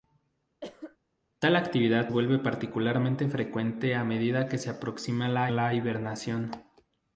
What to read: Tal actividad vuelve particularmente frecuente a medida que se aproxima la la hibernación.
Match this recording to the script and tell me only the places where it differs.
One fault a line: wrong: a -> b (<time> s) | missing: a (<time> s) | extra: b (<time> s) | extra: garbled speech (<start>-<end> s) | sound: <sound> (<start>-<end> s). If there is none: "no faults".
sound: cough (0.6-1.0 s)